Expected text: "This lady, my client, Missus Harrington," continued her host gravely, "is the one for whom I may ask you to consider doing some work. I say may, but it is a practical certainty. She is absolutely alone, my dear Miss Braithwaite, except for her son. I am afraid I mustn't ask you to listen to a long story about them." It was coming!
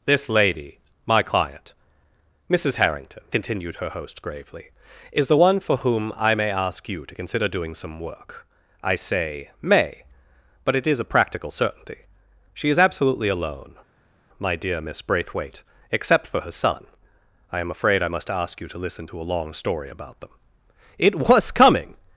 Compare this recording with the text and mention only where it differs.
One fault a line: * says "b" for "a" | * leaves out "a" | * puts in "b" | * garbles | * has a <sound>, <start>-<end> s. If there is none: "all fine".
* says "must" for "mustn't"